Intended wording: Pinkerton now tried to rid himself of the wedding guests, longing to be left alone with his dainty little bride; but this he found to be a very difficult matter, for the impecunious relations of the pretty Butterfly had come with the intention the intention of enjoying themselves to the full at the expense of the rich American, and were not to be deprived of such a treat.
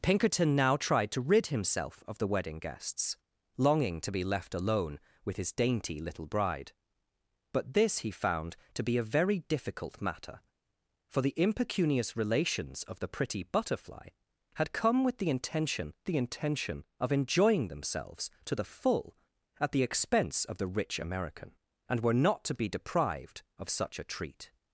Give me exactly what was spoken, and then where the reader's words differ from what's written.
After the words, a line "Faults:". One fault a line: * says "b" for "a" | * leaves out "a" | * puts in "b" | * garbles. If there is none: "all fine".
Pinkerton now tried to rid himself of the wedding guests, longing to be left alone with his dainty little bride; but this he found to be a very difficult matter, for the impecunious relations of the pretty Butterfly had come with the intention the intention of enjoying themselves to the full at the expense of the rich American, and were not to be deprived of such a treat.
Faults:
all fine